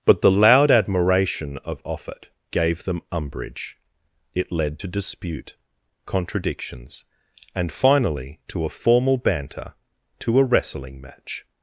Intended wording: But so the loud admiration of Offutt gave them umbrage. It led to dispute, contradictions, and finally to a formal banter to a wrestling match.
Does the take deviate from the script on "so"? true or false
true